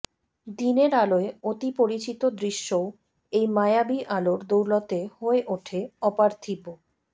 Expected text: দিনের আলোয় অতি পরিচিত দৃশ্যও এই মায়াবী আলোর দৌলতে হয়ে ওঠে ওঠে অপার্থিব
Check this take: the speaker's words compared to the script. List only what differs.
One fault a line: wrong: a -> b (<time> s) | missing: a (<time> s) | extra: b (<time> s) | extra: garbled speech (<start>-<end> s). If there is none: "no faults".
missing: ওঠে (5.8 s)